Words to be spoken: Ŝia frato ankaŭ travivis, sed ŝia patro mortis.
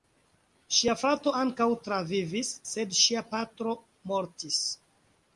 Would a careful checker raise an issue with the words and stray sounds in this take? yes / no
no